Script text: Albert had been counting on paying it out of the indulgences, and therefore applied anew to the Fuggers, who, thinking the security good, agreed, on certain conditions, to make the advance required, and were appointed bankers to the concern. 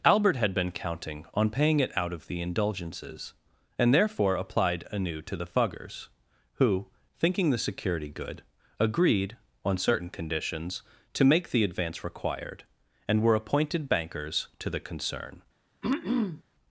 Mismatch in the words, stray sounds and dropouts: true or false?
true